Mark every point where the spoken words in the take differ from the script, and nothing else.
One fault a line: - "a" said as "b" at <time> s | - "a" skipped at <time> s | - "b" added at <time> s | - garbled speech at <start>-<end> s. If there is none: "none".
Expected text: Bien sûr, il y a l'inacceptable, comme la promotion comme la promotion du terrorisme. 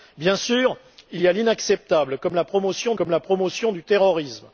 none